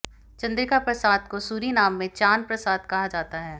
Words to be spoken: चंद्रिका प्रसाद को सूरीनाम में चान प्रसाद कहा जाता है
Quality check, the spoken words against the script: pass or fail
pass